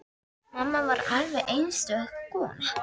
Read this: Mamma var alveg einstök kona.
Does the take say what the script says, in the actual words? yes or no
yes